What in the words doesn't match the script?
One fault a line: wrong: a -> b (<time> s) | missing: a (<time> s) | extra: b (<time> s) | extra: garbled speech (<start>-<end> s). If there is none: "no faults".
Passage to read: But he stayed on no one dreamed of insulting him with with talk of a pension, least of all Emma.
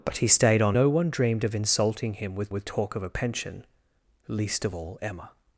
no faults